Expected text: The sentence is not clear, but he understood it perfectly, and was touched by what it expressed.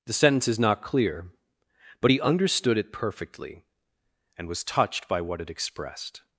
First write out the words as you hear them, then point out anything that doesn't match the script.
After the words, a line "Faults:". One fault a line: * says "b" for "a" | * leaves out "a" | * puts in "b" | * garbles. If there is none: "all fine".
The sentence is not clear, but he understood it perfectly, and was touched by what it expressed.
Faults:
all fine